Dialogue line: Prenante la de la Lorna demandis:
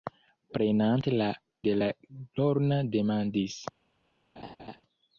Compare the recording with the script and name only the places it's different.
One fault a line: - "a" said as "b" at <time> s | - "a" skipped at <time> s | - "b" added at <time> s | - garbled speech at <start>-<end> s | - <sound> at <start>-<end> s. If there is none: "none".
- laugh at 4.4-4.8 s